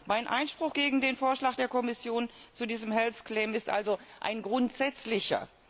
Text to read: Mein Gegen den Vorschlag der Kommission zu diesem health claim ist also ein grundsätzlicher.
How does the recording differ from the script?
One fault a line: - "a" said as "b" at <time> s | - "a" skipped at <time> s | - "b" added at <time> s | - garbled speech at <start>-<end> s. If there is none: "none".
- "Einspruch" added at 0.3 s